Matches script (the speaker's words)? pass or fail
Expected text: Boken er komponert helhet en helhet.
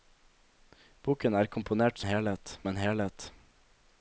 pass